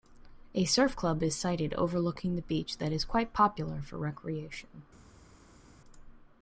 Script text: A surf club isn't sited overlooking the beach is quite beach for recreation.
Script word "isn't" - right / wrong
wrong